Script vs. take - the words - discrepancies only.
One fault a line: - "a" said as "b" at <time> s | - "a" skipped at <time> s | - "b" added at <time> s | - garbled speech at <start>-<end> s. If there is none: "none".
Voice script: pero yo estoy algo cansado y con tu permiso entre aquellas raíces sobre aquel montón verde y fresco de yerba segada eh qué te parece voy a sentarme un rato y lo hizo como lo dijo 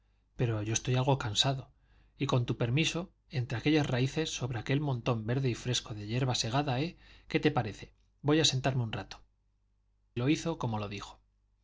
- "y" skipped at 9.2 s